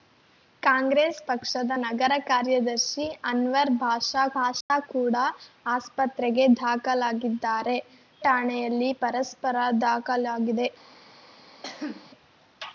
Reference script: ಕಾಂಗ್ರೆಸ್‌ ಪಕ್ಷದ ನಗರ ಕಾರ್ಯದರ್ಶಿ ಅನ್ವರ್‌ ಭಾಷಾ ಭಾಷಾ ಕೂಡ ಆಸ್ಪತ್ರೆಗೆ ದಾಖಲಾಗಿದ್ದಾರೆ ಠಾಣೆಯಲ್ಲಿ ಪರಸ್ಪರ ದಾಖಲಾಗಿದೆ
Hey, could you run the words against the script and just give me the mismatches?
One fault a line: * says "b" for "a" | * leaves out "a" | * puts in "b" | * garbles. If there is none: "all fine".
all fine